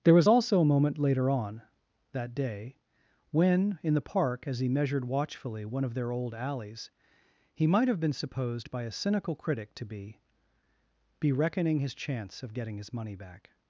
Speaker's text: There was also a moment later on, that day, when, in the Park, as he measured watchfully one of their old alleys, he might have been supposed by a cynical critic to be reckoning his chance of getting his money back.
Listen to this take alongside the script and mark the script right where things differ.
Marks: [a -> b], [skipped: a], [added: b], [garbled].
There was also a moment later on, that day, when, in the Park, as he measured watchfully one of their old alleys, he might have been supposed by a cynical critic to be [added: be] reckoning his chance of getting his money back.